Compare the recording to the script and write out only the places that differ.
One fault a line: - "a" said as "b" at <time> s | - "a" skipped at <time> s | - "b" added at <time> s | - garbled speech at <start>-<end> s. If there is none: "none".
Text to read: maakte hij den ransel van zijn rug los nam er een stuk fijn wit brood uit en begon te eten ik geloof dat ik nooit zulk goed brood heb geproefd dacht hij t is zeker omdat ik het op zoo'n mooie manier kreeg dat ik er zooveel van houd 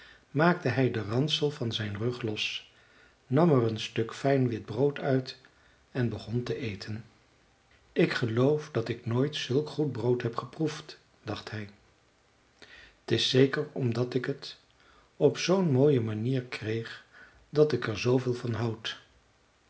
none